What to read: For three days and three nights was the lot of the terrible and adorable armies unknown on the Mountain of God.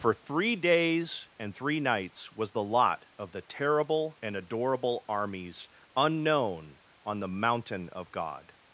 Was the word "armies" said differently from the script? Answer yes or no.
no